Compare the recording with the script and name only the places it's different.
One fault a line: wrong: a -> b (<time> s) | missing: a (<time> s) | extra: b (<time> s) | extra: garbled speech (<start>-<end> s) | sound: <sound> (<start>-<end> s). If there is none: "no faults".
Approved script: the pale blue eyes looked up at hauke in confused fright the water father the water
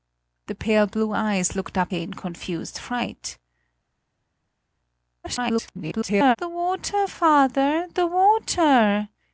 missing: at hauke (1.9 s)
extra: garbled speech (5.2-6.4 s)